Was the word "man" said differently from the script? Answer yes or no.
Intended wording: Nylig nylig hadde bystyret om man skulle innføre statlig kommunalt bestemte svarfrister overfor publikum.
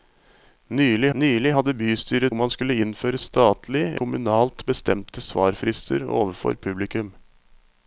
no